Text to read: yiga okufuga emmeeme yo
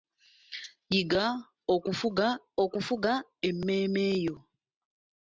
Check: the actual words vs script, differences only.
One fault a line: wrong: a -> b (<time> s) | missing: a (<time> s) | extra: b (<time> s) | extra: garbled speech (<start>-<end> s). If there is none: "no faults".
extra: okufuga (2.6 s)